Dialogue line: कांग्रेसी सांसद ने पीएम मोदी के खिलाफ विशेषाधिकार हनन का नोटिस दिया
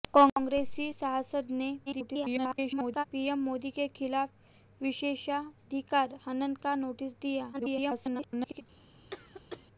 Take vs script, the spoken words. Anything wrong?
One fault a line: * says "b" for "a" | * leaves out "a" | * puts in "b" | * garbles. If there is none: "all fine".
* garbles
* garbles